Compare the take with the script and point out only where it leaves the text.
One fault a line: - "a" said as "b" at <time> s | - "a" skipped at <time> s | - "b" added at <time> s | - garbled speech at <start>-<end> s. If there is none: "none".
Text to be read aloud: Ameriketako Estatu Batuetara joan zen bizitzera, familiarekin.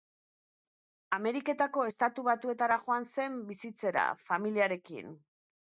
none